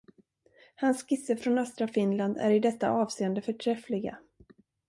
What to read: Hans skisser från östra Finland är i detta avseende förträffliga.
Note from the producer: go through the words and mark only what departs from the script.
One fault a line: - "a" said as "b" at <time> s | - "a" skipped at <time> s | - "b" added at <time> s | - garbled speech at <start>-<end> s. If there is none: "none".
none